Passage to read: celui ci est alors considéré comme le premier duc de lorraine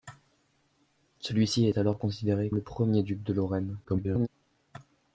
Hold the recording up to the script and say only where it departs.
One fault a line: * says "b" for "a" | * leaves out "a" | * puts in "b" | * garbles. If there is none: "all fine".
* leaves out "comme"
* garbles